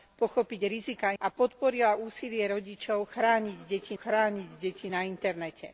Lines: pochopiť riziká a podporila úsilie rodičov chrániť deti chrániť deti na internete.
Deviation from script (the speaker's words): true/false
false